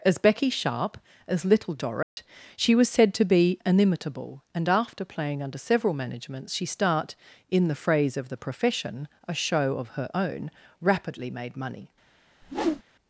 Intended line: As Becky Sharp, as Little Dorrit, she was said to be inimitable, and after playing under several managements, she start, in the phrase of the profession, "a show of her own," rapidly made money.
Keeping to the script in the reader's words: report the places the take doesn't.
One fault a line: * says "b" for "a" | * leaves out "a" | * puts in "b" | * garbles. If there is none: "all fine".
all fine